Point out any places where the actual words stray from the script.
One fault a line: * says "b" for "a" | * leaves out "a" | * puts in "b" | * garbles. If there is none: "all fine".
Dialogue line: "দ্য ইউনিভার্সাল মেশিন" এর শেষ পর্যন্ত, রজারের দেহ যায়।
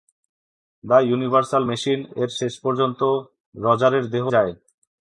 all fine